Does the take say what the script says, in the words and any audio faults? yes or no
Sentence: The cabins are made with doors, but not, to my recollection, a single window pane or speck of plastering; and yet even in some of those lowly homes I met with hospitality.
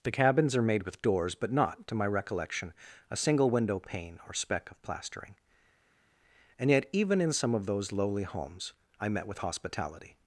yes